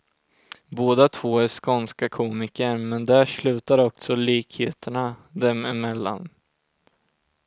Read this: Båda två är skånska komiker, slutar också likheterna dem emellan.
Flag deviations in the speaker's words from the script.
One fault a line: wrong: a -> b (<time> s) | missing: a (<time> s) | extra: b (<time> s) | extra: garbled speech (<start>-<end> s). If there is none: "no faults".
extra: men där (2.8 s)